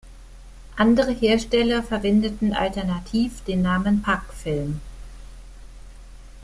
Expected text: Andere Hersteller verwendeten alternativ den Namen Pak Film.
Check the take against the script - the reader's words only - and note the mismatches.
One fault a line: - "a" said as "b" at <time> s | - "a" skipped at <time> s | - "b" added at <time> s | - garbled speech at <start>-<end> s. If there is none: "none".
none